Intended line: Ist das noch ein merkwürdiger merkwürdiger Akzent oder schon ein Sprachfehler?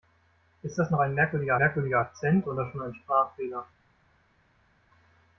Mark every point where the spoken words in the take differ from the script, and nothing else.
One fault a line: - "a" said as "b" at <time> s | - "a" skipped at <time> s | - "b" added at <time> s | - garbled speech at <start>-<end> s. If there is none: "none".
none